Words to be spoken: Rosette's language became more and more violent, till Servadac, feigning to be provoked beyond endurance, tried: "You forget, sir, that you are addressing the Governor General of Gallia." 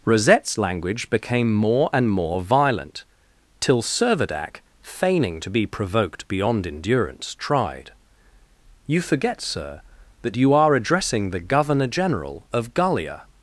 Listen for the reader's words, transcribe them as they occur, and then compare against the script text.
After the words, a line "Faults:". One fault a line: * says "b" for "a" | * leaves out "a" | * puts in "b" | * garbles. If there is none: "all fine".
Rosette's language became more and more violent, till Servadac, feigning to be provoked beyond endurance, tried: "You forget, sir, that you are addressing the Governor General of Gallia."
Faults:
all fine